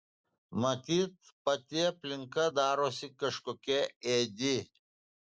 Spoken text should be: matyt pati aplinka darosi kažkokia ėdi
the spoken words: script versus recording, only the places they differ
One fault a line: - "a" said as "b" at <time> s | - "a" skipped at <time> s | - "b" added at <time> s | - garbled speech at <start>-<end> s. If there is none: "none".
none